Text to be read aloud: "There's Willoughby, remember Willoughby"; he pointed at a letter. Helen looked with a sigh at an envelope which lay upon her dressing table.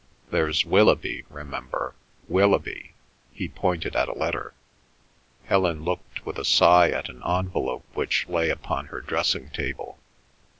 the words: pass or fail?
pass